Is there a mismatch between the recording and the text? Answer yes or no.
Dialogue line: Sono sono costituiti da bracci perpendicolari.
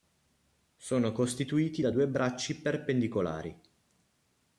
yes